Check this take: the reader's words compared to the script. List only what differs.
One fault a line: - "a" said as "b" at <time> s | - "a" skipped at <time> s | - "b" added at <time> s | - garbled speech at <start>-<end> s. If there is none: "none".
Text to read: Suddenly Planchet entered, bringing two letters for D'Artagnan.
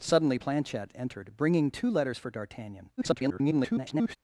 - garbled speech at 3.0-4.2 s